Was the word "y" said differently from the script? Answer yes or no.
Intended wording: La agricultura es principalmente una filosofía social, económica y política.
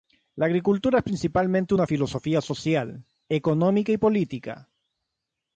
no